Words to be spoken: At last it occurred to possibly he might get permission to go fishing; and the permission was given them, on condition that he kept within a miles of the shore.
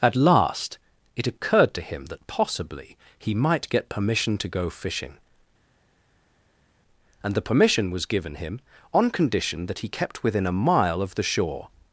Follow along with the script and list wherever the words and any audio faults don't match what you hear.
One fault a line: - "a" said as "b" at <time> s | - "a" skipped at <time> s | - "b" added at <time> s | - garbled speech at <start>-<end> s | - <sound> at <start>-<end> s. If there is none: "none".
- "him that" added at 1.8 s
- "them" said as "him" at 8.4 s
- "miles" said as "mile" at 10.6 s